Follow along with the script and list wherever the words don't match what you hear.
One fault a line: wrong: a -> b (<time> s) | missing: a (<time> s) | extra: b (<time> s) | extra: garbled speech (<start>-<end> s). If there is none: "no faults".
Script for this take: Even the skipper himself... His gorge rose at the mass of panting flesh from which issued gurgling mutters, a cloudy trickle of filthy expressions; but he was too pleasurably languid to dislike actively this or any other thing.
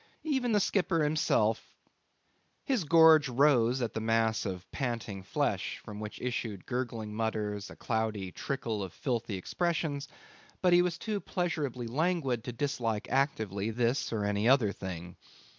no faults